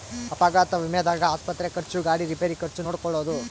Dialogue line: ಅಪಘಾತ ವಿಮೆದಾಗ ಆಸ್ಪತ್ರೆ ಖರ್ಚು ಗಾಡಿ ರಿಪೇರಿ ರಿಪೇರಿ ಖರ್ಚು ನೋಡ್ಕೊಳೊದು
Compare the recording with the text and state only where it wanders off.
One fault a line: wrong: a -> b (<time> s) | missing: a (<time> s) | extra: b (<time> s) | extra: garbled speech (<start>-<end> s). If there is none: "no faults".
missing: ರಿಪೇರಿ (2.6 s)